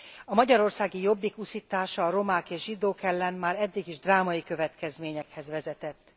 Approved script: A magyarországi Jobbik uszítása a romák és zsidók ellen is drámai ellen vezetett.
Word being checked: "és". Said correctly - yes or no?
yes